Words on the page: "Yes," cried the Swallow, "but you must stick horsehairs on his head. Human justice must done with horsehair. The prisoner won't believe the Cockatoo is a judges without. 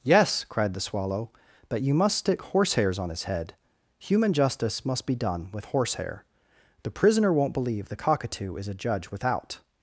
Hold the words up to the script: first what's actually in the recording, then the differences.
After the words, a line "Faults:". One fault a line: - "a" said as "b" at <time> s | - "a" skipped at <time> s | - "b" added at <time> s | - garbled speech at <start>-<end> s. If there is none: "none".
"Yes," cried the Swallow, "but you must stick horsehairs on his head. Human justice must be done with horsehair. The prisoner won't believe the Cockatoo is a judge without.
Faults:
- "be" added at 5.0 s
- "judges" said as "judge" at 8.7 s